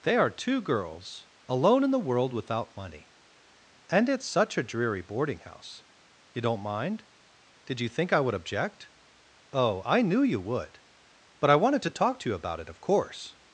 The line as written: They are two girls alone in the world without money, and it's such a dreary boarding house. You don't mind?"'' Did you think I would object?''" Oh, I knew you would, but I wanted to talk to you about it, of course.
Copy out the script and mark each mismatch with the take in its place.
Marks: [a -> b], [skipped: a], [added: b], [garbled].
They are two girls alone in the world without money, and it's such a dreary boarding house. You don't mind?"'' Did you think I would object?''" Oh, I knew you would, but I wanted to talk to you about it, of course.